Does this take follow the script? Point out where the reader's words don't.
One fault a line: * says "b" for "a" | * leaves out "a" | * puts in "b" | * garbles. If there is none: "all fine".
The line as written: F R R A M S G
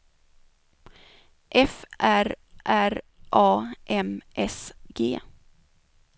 all fine